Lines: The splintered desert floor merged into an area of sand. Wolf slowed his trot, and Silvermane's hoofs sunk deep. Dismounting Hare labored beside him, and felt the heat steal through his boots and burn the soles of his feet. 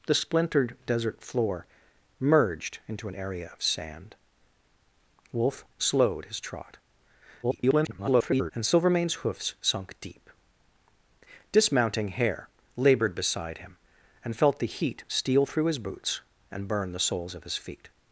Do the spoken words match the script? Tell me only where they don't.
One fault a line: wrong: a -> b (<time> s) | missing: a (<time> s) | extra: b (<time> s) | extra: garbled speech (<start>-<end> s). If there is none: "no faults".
extra: garbled speech (7.4-8.5 s)